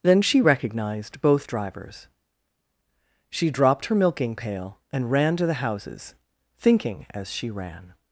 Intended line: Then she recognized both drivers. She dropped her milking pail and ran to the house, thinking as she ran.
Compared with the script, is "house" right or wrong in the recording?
wrong